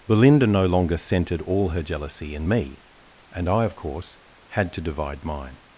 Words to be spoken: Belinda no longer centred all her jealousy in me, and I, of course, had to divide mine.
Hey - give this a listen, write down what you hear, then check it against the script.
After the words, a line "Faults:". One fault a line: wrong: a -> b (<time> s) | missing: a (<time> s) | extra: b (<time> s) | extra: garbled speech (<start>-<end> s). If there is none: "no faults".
Belinda no longer centred all her jealousy in me, and I, of course, had to divide mine.
Faults:
no faults